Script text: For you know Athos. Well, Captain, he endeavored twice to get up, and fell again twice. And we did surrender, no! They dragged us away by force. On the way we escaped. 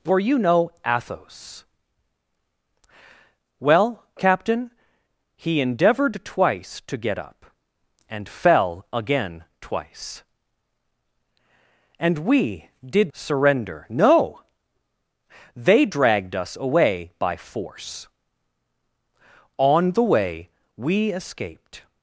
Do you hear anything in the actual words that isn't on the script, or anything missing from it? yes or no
no